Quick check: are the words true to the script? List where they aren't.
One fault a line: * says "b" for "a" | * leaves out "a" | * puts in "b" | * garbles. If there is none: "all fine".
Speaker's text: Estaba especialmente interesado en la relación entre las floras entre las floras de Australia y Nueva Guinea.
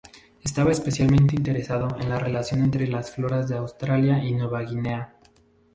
* leaves out "entre las floras"